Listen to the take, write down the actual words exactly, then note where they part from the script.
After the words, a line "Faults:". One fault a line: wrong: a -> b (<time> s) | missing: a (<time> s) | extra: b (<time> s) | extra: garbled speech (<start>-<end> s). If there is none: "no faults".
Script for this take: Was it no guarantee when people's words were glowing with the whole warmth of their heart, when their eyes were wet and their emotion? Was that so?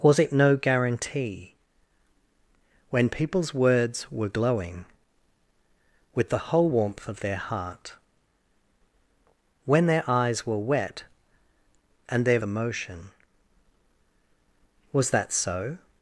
Was it no guarantee when people's words were glowing with the whole warmth of their heart, when their eyes were wet and their emotion? Was that so?
Faults:
no faults